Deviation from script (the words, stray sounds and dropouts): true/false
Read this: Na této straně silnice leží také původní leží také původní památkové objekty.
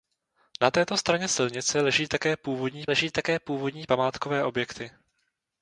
false